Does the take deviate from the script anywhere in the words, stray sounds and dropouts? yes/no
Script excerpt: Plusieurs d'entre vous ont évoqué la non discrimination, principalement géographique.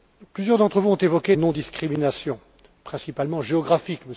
yes